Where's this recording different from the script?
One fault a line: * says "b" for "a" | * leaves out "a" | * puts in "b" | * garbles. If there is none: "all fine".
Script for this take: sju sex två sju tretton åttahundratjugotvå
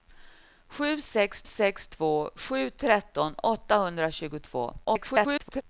* puts in "sex"
* garbles